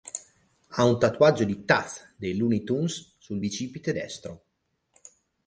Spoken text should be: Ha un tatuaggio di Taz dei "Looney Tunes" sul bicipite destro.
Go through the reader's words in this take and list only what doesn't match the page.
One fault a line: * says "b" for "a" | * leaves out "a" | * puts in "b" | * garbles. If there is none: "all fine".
all fine